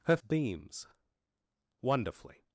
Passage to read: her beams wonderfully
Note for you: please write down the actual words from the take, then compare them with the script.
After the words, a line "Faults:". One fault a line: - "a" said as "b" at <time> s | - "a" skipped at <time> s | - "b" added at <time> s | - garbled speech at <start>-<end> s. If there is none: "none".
her beams wonderfully
Faults:
none